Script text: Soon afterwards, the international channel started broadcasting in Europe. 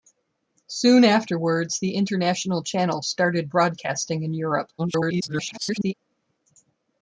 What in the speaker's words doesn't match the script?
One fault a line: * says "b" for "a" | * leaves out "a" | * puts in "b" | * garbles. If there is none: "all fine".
* garbles